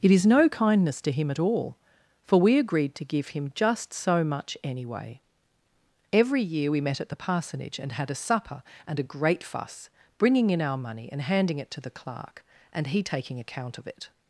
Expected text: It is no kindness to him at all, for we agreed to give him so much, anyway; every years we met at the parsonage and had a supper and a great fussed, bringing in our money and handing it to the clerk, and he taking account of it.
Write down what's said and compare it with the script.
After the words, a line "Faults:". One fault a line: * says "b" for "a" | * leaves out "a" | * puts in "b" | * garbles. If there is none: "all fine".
It is no kindness to him at all, for we agreed to give him just so much, anyway; every year we met at the parsonage and had a supper and a great fuss, bringing in our money and handing it to the clerk, and he taking account of it.
Faults:
* puts in "just"
* says "year" for "years"
* says "fuss" for "fussed"